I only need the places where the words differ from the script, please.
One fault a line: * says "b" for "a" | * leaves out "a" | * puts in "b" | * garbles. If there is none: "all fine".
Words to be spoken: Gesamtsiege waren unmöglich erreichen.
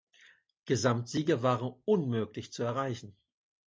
* puts in "zu"